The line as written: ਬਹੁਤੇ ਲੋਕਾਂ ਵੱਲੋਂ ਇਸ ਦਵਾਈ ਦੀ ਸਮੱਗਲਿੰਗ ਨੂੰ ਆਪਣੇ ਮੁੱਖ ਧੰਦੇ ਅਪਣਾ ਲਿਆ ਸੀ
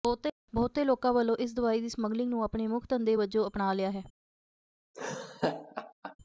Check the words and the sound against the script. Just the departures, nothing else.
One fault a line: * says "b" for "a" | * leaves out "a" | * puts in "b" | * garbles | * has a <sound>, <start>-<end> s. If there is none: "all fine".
* puts in "ਵਜੋਂ"
* says "ਹੈ" for "ਸੀ"
* has a laugh, 4.9-6.2 s